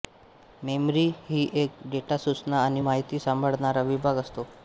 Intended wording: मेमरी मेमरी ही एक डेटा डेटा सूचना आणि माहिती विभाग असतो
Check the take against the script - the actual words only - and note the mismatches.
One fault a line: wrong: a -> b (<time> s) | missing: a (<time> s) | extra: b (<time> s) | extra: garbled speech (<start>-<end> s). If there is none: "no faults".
missing: मेमरी (1.0 s)
missing: डेटा (2.2 s)
extra: सांभाळणारा (3.2 s)